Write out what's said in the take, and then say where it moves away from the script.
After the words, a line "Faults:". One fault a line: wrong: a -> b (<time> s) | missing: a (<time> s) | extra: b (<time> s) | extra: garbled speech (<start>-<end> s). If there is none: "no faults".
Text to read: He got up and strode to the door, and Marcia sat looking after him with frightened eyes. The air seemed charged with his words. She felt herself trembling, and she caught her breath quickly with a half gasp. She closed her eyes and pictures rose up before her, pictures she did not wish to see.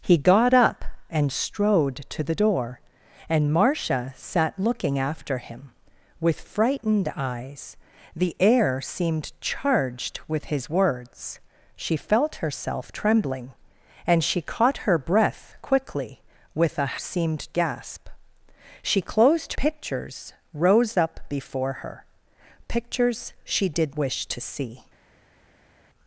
He got up and strode to the door, and Marcia sat looking after him with frightened eyes. The air seemed charged with his words. She felt herself trembling, and she caught her breath quickly with a seemed gasp. She closed pictures rose up before her, pictures she did wish to see.
Faults:
wrong: half -> seemed (17.0 s)
missing: her eyes and (19.5 s)
missing: not (24.0 s)